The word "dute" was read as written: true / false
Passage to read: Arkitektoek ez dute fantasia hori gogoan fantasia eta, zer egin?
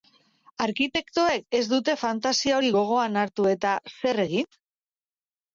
true